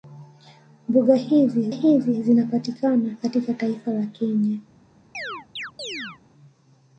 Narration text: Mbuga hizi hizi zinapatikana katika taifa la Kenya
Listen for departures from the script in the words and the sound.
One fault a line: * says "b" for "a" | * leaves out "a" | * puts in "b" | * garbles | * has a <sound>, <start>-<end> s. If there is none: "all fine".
* has a chirp, 5.1-6.2 s